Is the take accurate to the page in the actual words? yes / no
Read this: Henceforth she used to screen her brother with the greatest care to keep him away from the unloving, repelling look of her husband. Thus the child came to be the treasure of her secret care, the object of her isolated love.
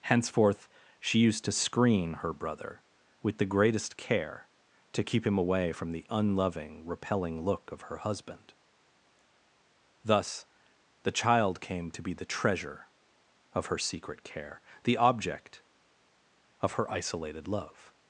yes